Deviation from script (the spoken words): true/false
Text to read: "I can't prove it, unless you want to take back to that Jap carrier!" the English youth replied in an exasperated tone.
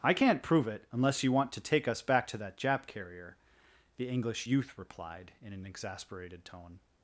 true